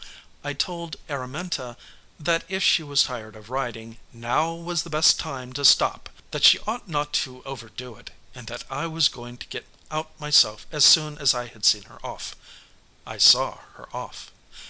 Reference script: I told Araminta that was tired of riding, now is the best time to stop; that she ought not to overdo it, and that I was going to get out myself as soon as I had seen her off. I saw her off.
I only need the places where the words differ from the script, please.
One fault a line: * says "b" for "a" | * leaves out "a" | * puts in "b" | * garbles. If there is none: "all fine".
* puts in "if she"
* says "was" for "is"